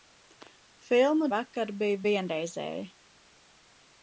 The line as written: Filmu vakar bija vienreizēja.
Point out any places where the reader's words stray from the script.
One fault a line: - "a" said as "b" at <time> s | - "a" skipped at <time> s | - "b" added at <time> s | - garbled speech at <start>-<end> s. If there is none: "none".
none